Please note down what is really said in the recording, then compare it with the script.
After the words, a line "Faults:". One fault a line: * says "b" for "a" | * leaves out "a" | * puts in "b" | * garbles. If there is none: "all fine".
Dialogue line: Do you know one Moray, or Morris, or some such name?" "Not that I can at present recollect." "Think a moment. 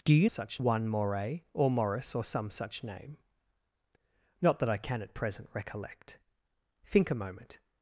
Do you such one Moray, or Morris, or some such name?" "Not that I can at present recollect." "Think a moment.
Faults:
* says "such" for "know"